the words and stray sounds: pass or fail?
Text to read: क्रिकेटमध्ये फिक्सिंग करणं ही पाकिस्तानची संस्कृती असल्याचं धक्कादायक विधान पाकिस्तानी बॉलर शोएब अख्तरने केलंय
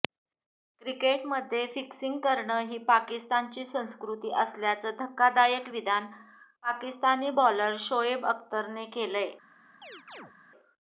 fail